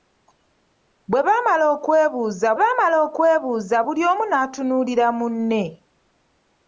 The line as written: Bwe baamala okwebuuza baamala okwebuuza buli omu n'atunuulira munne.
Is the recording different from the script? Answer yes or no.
no